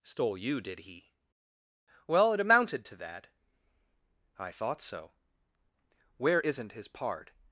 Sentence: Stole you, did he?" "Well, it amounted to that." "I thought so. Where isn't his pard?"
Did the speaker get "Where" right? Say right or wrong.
right